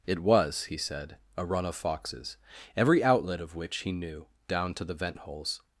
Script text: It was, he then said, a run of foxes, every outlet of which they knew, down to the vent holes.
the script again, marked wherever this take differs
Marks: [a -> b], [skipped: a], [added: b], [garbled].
It was, he [skipped: then] said, a run of foxes, every outlet of which [they -> he] knew, down to the vent holes.